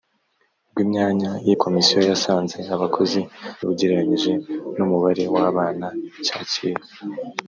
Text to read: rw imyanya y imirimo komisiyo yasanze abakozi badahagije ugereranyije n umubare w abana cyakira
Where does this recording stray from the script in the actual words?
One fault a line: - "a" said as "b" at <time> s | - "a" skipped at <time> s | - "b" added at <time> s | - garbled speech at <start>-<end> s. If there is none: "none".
- "imirimo" skipped at 1.5 s
- "badahagije" skipped at 3.2 s